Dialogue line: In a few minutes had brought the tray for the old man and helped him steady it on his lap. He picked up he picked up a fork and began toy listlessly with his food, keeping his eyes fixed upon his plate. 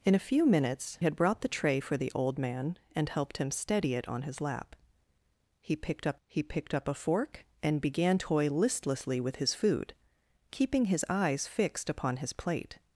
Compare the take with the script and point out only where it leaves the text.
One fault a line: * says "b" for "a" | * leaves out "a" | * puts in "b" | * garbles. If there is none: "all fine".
all fine